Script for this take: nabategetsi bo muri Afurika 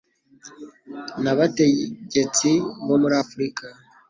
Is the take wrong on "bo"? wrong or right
right